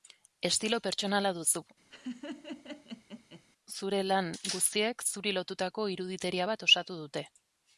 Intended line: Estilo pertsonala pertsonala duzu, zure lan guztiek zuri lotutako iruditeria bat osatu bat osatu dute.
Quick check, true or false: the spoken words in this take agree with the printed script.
false